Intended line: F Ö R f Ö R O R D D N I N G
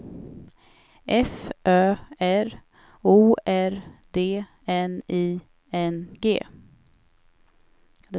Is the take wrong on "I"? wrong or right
right